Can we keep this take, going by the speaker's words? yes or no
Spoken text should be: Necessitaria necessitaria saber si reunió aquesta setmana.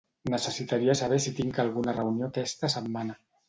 no